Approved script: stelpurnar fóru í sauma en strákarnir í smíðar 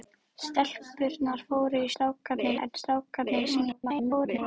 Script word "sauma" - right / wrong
wrong